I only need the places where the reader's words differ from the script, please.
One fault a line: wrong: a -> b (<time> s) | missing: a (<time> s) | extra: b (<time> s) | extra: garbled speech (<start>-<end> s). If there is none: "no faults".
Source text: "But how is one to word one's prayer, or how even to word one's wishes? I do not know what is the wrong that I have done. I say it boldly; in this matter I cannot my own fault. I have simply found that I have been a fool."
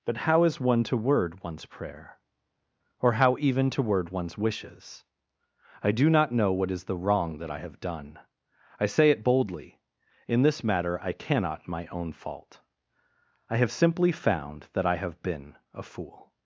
no faults